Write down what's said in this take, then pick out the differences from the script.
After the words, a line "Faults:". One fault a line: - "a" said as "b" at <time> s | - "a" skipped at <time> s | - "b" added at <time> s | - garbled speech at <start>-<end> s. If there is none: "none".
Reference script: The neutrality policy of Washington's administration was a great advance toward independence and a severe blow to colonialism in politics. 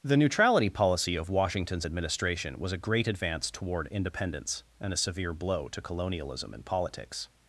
The neutrality policy of Washington's administration was a great advance toward independence and a severe blow to colonialism in politics.
Faults:
none